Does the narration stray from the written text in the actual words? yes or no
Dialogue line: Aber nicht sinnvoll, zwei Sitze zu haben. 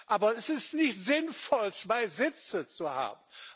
yes